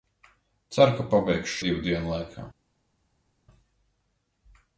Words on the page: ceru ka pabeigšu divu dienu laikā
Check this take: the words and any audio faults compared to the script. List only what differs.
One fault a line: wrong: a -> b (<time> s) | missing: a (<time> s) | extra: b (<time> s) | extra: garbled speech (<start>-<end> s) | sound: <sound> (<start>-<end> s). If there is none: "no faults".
no faults